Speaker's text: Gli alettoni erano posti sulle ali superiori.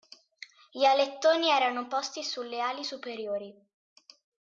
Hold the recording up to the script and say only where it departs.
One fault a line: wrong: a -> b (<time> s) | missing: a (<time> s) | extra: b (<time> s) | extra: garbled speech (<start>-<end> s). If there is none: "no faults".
no faults